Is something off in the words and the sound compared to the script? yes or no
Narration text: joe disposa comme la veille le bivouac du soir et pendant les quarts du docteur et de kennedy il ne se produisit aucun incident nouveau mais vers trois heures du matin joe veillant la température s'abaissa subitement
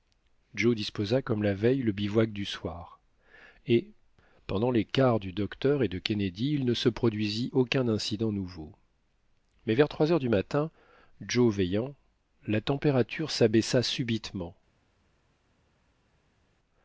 no